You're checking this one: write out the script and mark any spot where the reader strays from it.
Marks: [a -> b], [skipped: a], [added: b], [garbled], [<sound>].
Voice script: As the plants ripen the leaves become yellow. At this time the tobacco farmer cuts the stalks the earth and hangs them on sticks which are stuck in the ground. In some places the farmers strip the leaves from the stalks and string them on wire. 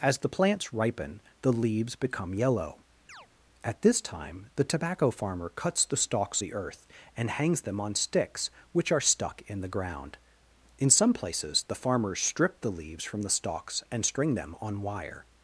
As the plants ripen the leaves become yellow. [chirp] At this time the tobacco farmer cuts the stalks the earth and hangs them on sticks which are stuck in the ground. In some places the farmers strip the leaves from the stalks and string them on wire.